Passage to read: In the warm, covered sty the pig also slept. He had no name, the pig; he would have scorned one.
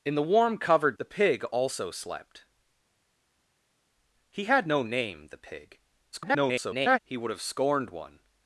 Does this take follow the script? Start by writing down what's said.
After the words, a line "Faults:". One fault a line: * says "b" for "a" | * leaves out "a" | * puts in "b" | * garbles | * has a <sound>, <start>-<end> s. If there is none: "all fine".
In the warm, covered the pig also slept. He had no name, the pig; [garbled] he would have scorned one.
Faults:
* leaves out "sty"
* garbles